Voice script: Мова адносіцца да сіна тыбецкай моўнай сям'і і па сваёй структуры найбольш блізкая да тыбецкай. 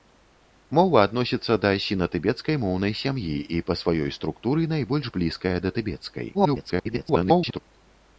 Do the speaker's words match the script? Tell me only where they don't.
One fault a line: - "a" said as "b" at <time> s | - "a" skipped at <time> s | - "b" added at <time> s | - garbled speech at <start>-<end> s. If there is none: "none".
- garbled speech at 6.3-7.6 s